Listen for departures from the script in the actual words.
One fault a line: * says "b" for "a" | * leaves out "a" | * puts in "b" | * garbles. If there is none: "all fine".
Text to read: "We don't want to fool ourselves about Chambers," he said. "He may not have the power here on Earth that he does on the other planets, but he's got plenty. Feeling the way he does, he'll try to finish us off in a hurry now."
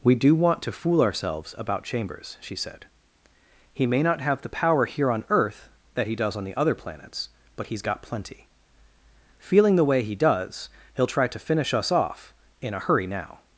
* says "do" for "don't"
* says "she" for "he"